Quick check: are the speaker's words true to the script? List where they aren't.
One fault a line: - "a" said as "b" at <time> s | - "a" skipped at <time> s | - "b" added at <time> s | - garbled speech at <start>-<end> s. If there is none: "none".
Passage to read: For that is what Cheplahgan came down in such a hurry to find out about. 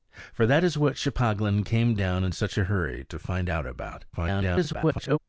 - garbled speech at 4.1-5.2 s